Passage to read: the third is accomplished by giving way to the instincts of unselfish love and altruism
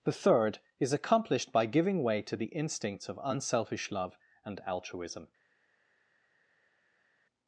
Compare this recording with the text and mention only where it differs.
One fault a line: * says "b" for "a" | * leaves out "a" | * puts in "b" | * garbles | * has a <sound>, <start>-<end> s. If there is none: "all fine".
all fine